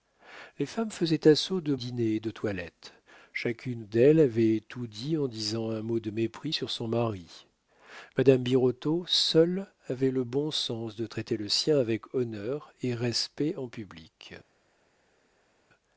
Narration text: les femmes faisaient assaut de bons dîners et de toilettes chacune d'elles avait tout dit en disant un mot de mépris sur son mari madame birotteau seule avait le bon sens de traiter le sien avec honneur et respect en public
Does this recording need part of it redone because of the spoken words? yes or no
yes